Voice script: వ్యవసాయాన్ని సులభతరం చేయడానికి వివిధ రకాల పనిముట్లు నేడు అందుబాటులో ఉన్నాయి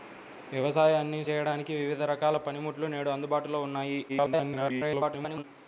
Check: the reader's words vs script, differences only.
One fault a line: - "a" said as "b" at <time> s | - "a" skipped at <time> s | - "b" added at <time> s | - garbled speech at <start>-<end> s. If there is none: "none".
- "సులభతరం" skipped at 1.2 s
- garbled speech at 4.1-5.4 s